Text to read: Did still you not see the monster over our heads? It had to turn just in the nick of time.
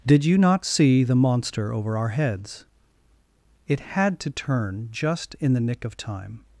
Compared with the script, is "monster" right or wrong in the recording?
right